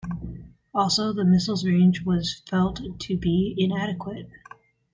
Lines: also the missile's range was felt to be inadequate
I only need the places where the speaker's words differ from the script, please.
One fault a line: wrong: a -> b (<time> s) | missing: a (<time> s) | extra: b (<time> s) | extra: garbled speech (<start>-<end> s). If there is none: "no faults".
no faults